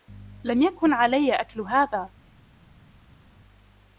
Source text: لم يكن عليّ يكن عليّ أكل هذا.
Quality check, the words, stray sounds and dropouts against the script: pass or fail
fail